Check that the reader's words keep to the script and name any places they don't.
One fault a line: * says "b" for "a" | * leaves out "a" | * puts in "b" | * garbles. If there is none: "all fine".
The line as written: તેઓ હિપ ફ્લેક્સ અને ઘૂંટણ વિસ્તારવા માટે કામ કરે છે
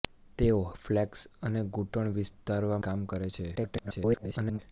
* leaves out "હિપ"
* leaves out "માટે"
* garbles